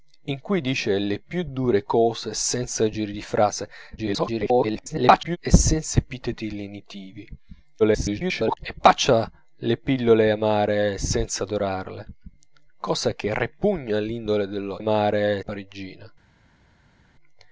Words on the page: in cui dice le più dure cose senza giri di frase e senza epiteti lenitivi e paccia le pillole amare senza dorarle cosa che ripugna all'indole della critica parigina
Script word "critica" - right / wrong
wrong